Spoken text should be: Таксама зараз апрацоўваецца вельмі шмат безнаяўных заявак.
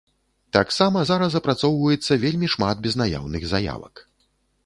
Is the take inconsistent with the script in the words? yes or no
no